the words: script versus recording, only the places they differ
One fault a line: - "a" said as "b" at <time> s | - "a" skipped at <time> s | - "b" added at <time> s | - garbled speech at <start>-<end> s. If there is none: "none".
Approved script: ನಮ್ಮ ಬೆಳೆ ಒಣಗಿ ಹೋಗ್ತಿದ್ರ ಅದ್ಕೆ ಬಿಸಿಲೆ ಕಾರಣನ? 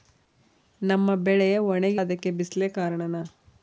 - "ಹೋಗ್ತಿದ್ರ" skipped at 2.0 s